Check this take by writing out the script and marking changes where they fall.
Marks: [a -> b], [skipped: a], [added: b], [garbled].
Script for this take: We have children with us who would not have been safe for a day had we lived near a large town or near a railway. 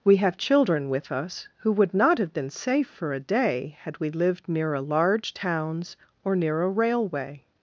We have children with us who would not have been safe for a day had we lived near a large [town -> towns] or near a railway.